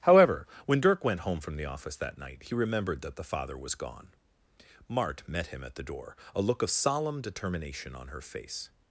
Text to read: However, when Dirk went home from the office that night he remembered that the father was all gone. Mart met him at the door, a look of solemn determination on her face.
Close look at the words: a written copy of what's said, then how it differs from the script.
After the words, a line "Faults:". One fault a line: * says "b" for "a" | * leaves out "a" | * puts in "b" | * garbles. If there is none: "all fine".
However, when Dirk went home from the office that night he remembered that the father was gone. Mart met him at the door, a look of solemn determination on her face.
Faults:
* leaves out "all"